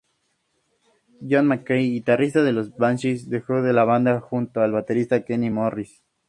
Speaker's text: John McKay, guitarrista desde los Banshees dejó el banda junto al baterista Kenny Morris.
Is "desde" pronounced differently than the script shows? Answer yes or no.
yes